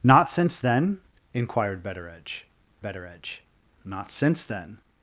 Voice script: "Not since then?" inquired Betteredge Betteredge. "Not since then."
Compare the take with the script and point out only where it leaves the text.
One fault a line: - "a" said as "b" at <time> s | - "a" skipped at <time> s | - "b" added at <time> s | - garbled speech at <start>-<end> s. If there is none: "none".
none